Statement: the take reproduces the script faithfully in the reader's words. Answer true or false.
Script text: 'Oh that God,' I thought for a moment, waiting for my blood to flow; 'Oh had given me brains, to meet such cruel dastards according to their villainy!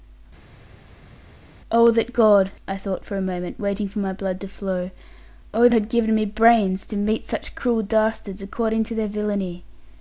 true